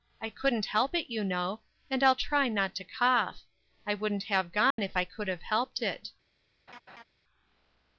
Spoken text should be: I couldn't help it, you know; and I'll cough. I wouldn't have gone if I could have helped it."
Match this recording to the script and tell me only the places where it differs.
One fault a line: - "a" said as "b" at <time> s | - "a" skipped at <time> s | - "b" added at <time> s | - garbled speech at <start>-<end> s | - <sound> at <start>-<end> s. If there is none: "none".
- "try not to" added at 2.2 s
- dropout at 4.7-4.8 s
- laugh at 6.7-7.0 s